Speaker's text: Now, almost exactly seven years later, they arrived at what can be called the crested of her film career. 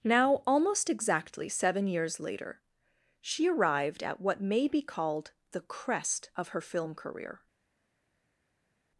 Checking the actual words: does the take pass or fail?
fail